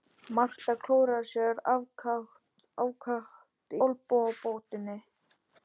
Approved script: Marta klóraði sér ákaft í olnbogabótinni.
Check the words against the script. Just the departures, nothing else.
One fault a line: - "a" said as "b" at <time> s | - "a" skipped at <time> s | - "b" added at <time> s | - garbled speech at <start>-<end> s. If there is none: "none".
- "í" skipped at 3.8 s